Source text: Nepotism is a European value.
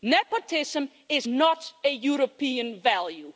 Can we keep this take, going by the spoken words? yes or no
no